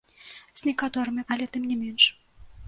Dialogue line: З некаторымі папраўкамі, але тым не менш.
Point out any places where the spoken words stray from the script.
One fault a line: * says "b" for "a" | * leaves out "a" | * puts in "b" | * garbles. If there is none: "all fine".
* leaves out "папраўкамі"